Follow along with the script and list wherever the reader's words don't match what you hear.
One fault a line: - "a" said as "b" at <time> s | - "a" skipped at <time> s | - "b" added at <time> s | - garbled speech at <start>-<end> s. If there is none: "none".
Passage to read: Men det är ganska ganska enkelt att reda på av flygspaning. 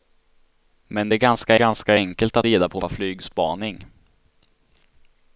none